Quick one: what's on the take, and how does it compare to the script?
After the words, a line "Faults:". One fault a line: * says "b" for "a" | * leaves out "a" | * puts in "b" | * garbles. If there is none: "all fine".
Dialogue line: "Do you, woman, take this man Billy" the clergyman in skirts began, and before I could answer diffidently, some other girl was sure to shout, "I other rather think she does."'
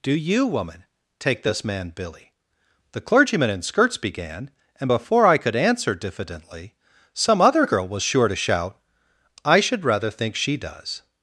"Do you, woman, take this man Billy" the clergyman in skirts began, and before I could answer diffidently, some other girl was sure to shout, "I should rather think she does."'
Faults:
* says "should" for "other"